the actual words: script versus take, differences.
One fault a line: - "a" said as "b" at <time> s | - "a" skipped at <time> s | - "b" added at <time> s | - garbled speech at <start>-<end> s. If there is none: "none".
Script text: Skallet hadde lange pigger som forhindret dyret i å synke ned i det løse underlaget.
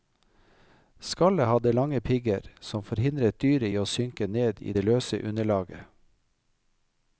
none